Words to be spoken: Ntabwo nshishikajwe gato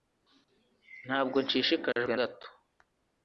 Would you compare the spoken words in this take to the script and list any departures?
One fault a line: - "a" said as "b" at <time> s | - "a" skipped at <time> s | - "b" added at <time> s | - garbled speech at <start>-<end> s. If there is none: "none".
none